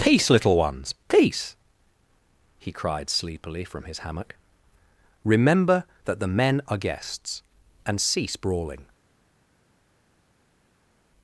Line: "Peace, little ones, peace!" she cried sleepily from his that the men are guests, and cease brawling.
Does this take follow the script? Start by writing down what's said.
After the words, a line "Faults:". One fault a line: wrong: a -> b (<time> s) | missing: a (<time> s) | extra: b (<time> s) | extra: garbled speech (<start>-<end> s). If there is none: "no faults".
"Peace, little ones, peace!" he cried sleepily from his hammock. "Remember that the men are guests, and cease brawling.
Faults:
wrong: she -> he (2.6 s)
extra: hammock Remember (4.0 s)